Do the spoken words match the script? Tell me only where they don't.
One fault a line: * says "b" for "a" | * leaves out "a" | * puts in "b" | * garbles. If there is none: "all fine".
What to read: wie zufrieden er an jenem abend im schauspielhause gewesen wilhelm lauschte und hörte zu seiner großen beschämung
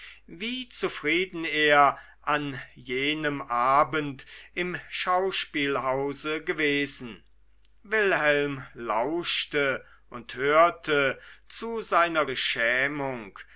* leaves out "großen"